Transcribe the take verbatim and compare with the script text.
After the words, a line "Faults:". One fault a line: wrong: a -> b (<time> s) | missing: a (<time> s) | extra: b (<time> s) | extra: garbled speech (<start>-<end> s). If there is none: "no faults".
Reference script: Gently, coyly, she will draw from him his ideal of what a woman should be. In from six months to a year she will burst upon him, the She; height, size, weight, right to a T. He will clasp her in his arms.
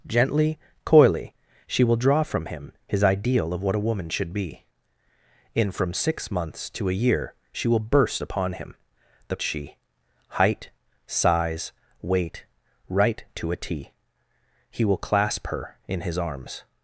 Gently, coyly, she will draw from him his ideal of what a woman should be. In from six months to a year she will burst upon him, the She; height, size, weight, right to a T. He will clasp her in his arms.
Faults:
no faults